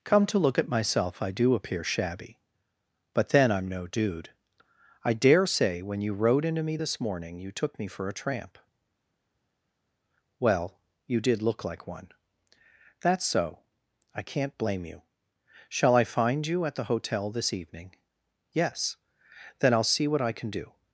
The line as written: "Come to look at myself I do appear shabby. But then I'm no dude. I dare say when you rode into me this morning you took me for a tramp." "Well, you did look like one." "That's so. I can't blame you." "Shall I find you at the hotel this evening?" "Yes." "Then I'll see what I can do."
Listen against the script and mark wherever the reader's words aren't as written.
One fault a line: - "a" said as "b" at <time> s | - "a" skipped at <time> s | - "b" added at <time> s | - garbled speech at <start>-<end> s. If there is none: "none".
none